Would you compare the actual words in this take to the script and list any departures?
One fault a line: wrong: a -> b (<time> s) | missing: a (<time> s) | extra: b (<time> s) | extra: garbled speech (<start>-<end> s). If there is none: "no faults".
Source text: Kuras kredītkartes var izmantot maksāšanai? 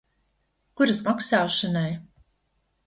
missing: kredītkartes var izmantot (1.0 s)